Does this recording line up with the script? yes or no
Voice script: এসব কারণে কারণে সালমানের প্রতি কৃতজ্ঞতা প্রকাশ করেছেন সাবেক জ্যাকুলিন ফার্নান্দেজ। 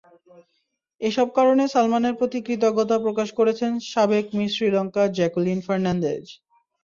no